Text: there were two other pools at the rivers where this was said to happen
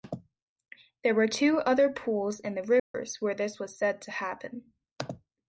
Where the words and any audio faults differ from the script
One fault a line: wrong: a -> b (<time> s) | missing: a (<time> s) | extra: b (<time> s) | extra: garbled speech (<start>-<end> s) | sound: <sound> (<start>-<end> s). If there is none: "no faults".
wrong: at -> in (2.4 s)
sound: dropout (2.8-2.9 s)